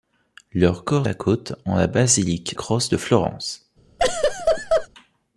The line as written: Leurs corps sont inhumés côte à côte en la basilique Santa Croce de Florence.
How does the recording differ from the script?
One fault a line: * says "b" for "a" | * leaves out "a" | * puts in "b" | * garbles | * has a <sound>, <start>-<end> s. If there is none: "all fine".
* leaves out "sont inhumés côte"
* leaves out "Santa"
* has a laugh, 4.0-4.9 s